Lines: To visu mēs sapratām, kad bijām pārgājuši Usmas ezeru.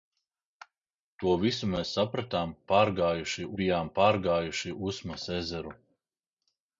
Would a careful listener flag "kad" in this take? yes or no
yes